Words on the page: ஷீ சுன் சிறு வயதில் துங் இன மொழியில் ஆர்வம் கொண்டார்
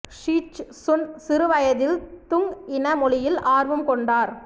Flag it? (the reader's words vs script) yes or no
yes